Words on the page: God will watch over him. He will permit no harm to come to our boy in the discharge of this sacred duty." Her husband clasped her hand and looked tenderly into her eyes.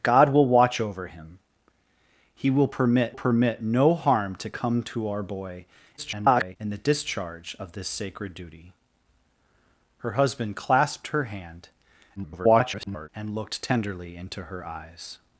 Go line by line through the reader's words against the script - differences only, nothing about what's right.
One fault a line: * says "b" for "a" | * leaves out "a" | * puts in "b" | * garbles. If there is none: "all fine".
* puts in "permit"
* garbles
* garbles